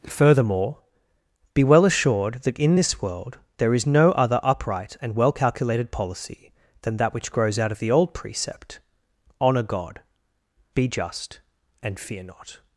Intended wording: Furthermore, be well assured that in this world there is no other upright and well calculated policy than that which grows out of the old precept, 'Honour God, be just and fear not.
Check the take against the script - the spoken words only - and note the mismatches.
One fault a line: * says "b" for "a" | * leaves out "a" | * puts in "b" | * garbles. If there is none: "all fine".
all fine